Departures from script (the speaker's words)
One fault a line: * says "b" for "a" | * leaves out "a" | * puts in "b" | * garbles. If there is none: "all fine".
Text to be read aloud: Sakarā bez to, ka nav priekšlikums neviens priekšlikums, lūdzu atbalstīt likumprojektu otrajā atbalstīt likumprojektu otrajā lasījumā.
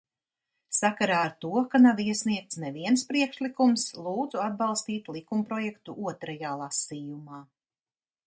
* says "ar" for "bez"
* says "iesniegts" for "priekšlikums"
* leaves out "atbalstīt likumprojektu otrajā"